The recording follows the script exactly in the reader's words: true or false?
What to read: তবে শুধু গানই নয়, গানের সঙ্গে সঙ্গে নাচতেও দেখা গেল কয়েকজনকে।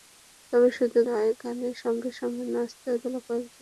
false